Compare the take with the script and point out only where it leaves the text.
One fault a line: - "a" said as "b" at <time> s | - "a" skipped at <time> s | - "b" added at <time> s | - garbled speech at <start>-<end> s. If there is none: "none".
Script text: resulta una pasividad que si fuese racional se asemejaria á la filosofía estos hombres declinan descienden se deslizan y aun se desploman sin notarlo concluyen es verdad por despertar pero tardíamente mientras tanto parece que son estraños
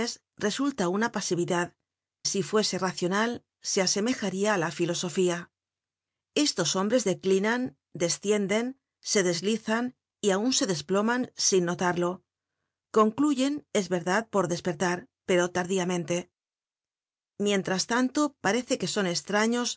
- "que" skipped at 1.8 s